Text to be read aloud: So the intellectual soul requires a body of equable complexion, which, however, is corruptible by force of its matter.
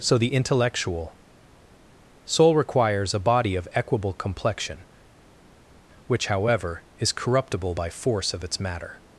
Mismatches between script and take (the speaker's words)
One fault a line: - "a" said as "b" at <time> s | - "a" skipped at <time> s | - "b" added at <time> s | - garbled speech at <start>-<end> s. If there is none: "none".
none